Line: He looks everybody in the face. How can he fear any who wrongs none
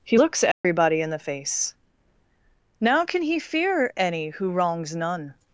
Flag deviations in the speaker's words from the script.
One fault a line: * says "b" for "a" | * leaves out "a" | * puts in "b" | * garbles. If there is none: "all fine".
* says "Now" for "How"